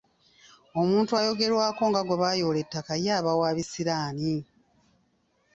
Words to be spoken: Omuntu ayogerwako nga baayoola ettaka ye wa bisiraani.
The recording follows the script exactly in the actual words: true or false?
false